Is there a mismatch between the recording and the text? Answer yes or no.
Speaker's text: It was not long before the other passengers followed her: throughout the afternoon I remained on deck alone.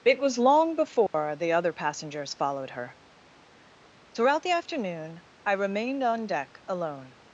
yes